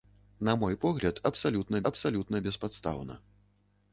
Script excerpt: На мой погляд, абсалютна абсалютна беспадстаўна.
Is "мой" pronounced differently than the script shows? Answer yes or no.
no